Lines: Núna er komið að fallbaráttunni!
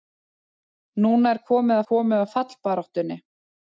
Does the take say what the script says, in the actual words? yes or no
no